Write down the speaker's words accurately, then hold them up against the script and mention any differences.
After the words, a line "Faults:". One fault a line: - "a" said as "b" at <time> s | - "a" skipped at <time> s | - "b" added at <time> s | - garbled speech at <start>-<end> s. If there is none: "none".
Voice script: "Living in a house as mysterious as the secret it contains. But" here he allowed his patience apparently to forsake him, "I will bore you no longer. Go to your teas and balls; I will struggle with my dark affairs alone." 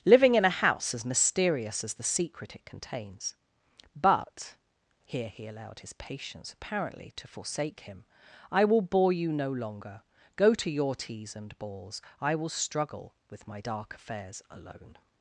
"Living in a house as mysterious as the secret it contains. But" here he allowed his patience apparently to forsake him, "I will bore you no longer. Go to your teas and balls; I will struggle with my dark affairs alone."
Faults:
none